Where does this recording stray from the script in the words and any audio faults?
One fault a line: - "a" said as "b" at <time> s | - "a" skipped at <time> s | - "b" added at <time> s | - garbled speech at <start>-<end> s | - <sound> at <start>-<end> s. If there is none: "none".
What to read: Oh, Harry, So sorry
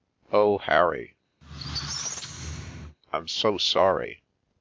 - squeak at 1.4-3.0 s
- "I'm" added at 3.1 s